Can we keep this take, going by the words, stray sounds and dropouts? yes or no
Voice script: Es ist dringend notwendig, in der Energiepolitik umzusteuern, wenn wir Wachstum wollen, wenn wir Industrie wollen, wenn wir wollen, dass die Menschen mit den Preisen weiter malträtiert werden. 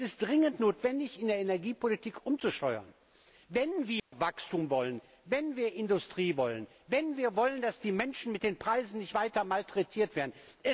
no